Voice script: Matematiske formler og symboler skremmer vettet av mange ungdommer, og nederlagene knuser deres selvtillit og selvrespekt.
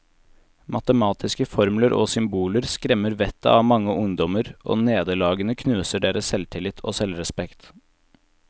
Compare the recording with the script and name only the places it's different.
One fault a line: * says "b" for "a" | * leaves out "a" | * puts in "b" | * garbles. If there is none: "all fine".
all fine